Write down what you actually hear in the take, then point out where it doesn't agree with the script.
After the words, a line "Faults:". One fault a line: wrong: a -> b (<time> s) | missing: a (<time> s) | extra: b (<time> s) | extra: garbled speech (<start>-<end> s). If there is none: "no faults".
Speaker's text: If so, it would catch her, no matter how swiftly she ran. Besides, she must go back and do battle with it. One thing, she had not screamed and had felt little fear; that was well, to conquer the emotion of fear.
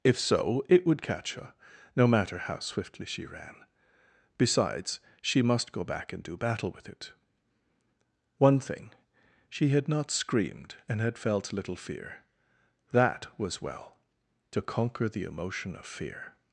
If so, it would catch her, no matter how swiftly she ran. Besides, she must go back and do battle with it. One thing, she had not screamed and had felt little fear; that was well, to conquer the emotion of fear.
Faults:
no faults